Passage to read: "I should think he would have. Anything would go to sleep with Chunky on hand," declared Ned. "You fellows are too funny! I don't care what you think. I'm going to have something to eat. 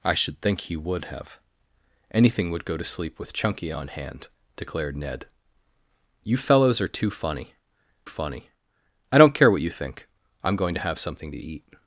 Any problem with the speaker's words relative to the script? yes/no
yes